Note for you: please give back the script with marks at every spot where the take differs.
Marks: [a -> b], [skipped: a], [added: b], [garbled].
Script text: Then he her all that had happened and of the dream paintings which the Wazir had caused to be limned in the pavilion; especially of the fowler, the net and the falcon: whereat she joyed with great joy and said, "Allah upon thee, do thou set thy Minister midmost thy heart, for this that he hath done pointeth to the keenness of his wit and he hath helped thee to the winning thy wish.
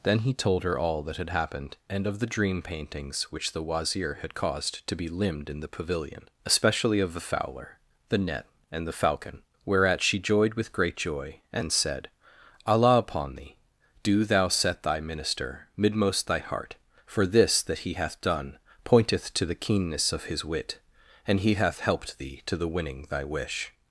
Then he [added: told] her all that had happened and of the dream paintings which the Wazir had caused to be limned in the pavilion; especially of the fowler, the net and the falcon: whereat she joyed with great joy and said, "Allah upon thee, do thou set thy Minister midmost thy heart, for this that he hath done pointeth to the keenness of his wit and he hath helped thee to the winning thy wish.